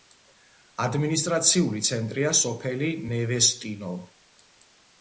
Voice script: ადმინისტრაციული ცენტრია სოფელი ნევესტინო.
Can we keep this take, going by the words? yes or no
yes